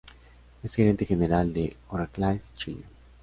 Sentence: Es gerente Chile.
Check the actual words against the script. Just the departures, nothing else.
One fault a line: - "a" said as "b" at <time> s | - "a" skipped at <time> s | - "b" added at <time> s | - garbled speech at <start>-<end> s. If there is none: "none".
- "general de Oracle" added at 1.0 s